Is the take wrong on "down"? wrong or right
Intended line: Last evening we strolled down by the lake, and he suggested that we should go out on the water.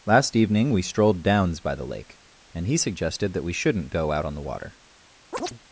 wrong